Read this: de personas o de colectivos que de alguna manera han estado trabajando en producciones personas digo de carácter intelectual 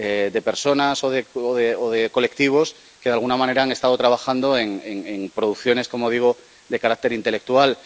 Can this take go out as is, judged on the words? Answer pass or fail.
fail